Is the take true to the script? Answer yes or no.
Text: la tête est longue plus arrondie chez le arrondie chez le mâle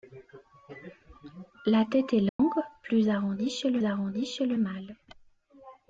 yes